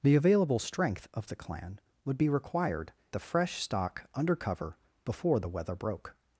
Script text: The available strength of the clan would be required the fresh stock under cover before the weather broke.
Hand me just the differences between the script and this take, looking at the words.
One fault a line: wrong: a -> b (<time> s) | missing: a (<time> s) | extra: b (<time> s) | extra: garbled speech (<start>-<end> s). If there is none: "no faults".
no faults